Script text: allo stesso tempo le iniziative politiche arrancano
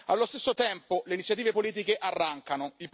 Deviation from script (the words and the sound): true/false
false